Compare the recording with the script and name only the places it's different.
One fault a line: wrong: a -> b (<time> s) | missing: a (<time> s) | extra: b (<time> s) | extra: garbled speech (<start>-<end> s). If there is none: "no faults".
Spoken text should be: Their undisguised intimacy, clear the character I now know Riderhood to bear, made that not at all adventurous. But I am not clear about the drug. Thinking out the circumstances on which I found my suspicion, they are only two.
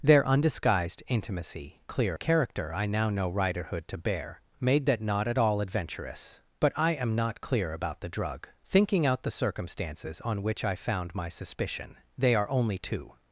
no faults